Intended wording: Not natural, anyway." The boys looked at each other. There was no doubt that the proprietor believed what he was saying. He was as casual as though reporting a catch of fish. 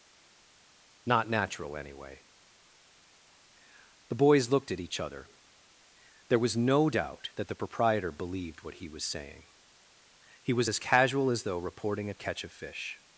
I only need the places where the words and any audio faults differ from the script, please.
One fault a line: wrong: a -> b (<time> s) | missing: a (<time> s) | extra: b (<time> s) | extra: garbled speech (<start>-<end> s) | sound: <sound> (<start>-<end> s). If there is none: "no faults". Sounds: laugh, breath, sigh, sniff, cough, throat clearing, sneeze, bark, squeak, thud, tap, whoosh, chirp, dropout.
no faults